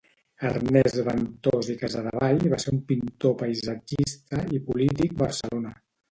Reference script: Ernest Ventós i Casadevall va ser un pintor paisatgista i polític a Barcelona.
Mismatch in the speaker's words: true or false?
false